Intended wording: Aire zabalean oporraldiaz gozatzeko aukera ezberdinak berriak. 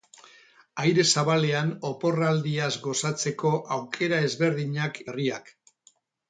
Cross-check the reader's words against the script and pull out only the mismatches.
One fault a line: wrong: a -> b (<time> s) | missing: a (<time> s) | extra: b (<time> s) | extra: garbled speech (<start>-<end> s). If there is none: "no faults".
no faults